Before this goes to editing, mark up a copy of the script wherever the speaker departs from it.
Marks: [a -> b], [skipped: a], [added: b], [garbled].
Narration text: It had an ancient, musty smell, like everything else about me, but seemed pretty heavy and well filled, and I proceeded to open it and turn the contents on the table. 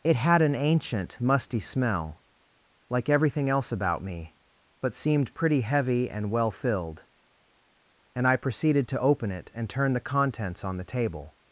It had an ancient, musty smell, like everything else about me, but seemed pretty heavy and well filled, and I proceeded to open it and turn the contents on the table.